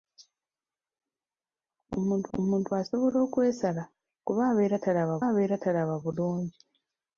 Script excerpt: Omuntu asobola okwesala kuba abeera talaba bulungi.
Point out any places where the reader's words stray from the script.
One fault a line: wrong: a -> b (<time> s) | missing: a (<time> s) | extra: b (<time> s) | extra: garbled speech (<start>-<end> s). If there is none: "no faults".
extra: omuntu (2.4 s)
extra: abeera talaba (5.3 s)